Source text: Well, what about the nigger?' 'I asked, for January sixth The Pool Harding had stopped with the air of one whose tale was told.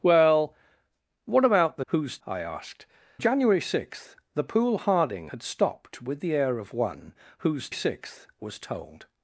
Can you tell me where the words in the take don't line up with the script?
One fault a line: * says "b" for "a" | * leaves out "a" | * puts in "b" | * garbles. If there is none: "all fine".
* says "whose" for "nigger"
* leaves out "for"
* says "sixth" for "tale"